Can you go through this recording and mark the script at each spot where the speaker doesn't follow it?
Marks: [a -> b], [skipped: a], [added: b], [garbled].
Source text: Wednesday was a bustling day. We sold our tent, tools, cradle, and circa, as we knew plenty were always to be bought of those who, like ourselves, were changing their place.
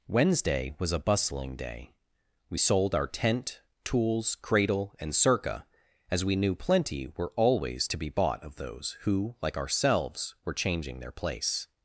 Wednesday was a bustling day. We sold our tent, tools, cradle, and circa, as we knew plenty were always to be bought of those who, like ourselves, were changing their place.